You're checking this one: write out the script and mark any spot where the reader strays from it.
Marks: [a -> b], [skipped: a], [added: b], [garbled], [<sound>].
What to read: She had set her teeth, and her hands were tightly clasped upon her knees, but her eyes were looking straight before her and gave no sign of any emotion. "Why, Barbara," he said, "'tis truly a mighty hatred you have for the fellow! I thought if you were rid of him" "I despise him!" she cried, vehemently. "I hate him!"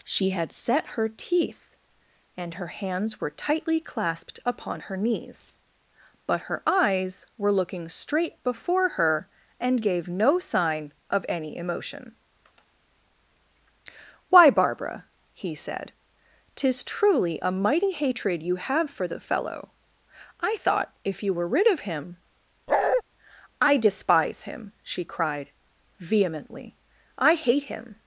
She had set her teeth, and her hands were tightly clasped upon her knees, but her eyes were looking straight before her and gave no sign of any emotion. "Why, Barbara," he said, "'tis truly a mighty hatred you have for the fellow! I thought if you were rid of him" [bark] "I despise him!" she cried, vehemently. "I hate him!"